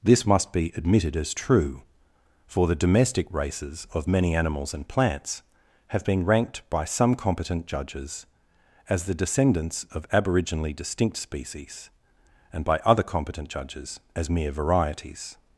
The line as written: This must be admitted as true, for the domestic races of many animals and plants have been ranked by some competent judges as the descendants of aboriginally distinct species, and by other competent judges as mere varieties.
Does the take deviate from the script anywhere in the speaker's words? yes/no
no